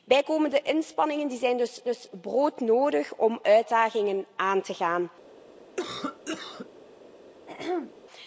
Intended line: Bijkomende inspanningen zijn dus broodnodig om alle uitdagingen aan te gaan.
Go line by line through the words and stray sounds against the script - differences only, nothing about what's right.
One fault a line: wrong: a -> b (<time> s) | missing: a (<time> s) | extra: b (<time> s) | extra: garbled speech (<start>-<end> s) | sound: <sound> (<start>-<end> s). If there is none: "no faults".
extra: dus (1.8 s)
missing: alle (3.4 s)
sound: cough (5.8-6.7 s)
sound: throat clearing (7.5-8.0 s)